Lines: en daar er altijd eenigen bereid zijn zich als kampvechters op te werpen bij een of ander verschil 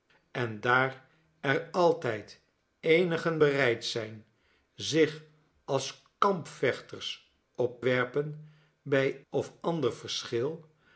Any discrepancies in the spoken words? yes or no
yes